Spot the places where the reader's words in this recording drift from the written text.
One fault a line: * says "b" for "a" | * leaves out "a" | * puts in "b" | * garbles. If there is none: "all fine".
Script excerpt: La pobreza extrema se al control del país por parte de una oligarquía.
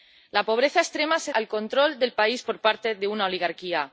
all fine